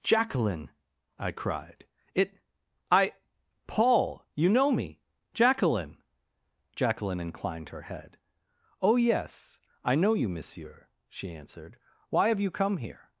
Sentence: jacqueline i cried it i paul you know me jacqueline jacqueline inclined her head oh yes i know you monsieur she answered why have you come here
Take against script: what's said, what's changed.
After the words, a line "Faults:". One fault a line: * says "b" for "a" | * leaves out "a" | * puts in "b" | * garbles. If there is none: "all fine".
jacqueline i cried it i paul you know me jacqueline jacqueline inclined her head oh yes i know you monsieur she answered why have you come here
Faults:
all fine